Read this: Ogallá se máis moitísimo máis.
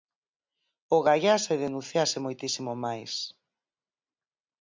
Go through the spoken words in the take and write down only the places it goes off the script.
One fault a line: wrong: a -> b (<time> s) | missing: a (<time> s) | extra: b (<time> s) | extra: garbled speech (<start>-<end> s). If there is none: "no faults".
wrong: máis -> denunciase (1.6 s)